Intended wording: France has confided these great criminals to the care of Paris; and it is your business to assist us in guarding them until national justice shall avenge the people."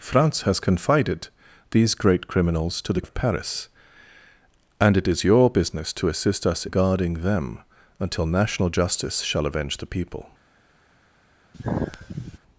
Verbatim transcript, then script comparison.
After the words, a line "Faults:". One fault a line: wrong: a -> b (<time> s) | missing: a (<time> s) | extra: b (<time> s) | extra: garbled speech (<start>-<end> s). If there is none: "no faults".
France has confided these great criminals to the of Paris; and it is your business to assist us guarding them until national justice shall avenge the people."
Faults:
missing: care (3.0 s)
missing: in (6.7 s)